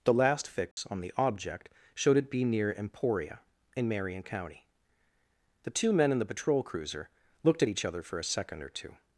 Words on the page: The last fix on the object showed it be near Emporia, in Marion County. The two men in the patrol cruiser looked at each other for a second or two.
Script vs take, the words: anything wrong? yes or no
no